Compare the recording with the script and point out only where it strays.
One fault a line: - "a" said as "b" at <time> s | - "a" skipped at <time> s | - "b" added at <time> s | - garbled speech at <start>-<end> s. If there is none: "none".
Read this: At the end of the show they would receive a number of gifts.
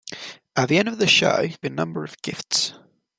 - "they would receive" skipped at 1.5 s